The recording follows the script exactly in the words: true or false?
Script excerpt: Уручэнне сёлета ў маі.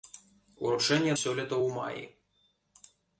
true